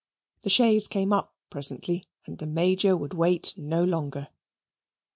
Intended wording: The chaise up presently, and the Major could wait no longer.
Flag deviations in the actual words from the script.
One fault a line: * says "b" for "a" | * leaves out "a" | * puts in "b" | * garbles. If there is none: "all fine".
* puts in "came"
* says "would" for "could"